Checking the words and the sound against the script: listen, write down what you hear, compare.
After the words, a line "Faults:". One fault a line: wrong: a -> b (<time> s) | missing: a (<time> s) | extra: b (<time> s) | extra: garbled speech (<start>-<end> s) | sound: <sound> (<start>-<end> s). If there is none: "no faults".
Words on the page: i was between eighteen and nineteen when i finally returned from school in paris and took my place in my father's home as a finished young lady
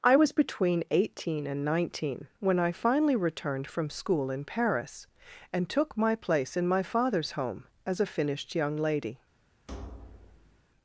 i was between eighteen and nineteen when i finally returned from school in paris and took my place in my father's home as a finished young lady
Faults:
sound: thud (9.7-10.6 s)